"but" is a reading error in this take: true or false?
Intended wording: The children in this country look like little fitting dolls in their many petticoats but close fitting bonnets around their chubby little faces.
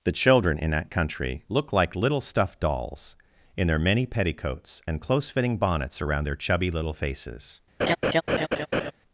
true